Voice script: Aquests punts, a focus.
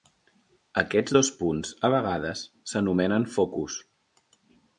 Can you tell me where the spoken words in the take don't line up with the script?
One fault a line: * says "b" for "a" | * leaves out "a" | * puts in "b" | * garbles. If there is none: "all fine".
* puts in "dos"
* puts in "vegades s'anomenen"